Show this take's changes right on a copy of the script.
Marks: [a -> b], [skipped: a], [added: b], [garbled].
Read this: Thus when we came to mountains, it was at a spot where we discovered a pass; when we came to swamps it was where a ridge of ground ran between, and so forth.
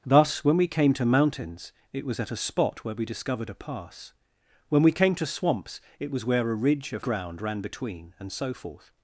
Thus when we came to mountains, it was at a spot where we discovered a pass; when we came to swamps it was where a ridge of ground ran between, and so forth.